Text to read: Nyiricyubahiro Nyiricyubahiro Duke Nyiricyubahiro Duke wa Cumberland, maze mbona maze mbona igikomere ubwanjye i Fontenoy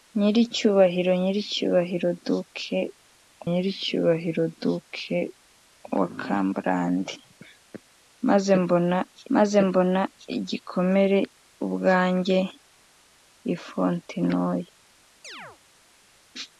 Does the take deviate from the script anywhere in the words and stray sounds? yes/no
yes